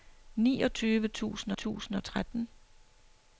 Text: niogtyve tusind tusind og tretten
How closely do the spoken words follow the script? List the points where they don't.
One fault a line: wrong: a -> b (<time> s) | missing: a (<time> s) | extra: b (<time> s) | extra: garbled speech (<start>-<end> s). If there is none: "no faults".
no faults